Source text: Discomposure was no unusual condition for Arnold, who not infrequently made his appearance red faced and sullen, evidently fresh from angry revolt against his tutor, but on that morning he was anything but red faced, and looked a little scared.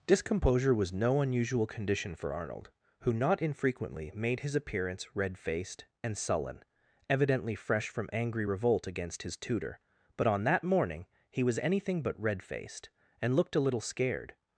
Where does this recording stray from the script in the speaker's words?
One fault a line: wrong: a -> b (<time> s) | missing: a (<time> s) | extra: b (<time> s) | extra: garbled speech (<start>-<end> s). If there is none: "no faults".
no faults